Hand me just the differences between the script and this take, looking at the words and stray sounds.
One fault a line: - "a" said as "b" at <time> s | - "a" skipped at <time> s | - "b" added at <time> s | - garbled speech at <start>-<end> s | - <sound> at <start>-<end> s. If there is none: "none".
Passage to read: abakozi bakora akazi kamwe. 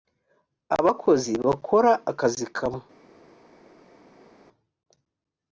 none